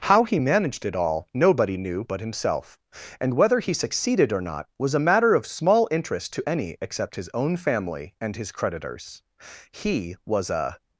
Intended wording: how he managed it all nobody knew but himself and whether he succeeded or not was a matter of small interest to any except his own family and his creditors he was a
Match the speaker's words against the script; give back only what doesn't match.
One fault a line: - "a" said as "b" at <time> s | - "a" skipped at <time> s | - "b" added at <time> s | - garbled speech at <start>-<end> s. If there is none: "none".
none